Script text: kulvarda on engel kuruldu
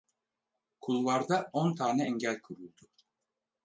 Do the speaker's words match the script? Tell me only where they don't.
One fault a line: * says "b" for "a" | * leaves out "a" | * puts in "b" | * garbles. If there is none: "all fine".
* puts in "tane"